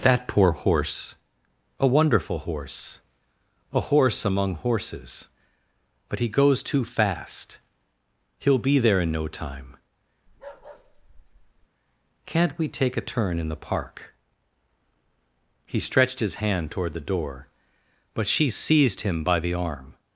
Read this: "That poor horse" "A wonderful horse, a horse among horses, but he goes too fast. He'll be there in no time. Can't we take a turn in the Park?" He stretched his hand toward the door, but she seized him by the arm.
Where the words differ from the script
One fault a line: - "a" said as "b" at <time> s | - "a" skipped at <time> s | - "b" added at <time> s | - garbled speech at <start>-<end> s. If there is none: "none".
none